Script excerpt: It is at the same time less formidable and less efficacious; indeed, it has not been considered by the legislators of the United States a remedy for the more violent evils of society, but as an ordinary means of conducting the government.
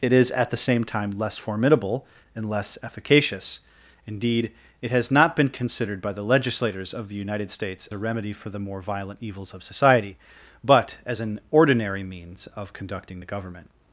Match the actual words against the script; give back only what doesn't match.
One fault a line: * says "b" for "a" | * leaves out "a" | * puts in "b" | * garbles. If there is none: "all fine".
all fine